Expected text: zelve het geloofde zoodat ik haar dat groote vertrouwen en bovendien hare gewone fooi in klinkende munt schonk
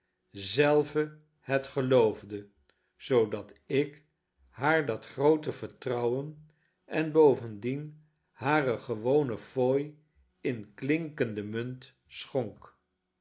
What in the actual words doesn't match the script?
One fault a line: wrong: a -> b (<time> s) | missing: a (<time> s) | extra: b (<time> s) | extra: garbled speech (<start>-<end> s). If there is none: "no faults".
no faults